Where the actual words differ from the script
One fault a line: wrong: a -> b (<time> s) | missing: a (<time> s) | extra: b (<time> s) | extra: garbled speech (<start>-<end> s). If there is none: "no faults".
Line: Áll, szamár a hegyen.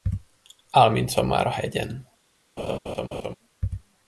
extra: mint (0.9 s)